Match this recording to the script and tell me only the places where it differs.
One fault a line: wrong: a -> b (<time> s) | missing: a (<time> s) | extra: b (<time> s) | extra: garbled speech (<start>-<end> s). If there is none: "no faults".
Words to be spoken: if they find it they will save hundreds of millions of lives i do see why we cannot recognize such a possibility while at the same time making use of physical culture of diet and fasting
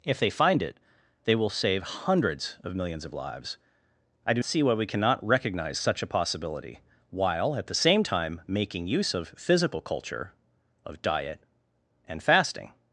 no faults